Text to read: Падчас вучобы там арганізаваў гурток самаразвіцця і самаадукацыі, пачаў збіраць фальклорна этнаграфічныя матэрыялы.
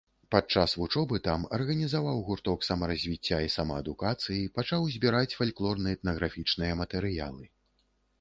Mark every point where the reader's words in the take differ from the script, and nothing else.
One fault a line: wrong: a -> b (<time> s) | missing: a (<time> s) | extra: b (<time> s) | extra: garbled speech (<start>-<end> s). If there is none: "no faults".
no faults